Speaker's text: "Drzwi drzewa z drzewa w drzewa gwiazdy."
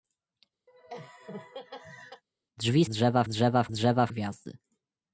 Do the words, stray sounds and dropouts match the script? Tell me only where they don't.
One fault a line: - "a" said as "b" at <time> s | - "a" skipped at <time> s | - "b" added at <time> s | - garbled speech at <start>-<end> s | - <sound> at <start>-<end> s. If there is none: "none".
- laugh at 0.7-2.2 s